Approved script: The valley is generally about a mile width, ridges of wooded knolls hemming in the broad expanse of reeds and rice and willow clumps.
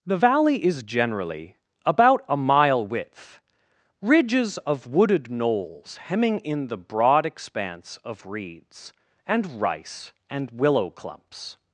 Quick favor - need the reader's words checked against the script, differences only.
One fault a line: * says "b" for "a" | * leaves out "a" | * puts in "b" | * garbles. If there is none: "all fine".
all fine